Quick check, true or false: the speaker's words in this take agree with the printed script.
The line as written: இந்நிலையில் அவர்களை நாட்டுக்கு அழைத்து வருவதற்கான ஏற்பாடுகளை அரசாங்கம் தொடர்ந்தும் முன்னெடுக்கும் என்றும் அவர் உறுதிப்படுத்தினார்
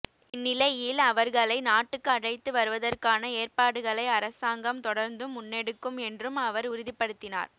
true